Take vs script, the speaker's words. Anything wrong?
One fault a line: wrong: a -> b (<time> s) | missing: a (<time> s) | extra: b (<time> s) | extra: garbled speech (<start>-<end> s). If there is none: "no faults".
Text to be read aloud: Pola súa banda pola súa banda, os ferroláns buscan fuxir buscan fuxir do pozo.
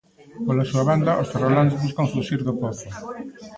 missing: pola súa banda (1.2 s)
missing: buscan fuxir (2.4 s)